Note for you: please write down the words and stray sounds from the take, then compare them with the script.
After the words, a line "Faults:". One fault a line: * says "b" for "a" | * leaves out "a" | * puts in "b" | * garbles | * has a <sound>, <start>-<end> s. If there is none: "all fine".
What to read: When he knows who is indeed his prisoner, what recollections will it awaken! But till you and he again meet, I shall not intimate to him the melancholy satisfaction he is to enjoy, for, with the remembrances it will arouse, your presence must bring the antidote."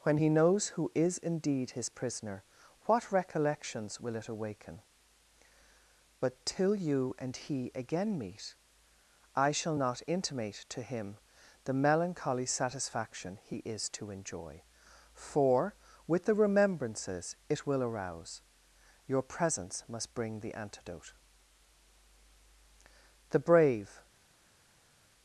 When he knows who is indeed his prisoner, what recollections will it awaken! But till you and he again meet, I shall not intimate to him the melancholy satisfaction he is to enjoy, for, with the remembrances it will arouse, your presence must bring the antidote." The brave
Faults:
* puts in "The brave"